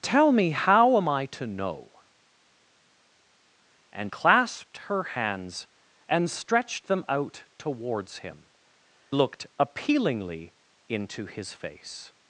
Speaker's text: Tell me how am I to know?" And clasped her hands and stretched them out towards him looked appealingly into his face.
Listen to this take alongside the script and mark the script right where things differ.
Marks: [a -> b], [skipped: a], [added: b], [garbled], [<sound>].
Tell me how am I to know?" And clasped her hands and stretched them out towards him looked appealingly into his face.